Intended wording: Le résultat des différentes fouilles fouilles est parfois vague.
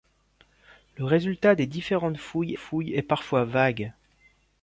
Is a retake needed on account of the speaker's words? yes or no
no